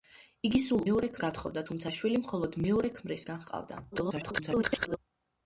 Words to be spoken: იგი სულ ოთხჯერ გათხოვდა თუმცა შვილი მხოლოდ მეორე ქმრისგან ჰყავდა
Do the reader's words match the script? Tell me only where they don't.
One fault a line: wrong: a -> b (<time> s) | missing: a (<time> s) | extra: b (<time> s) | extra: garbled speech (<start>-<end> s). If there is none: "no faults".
wrong: ოთხჯერ -> მეორე (0.9 s)
extra: garbled speech (3.9-5.0 s)